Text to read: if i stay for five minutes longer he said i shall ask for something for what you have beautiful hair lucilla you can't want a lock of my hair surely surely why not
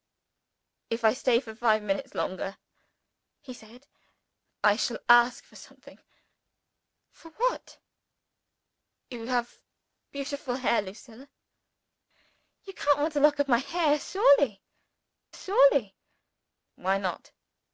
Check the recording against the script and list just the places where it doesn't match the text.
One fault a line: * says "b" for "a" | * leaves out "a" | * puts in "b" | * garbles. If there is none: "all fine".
all fine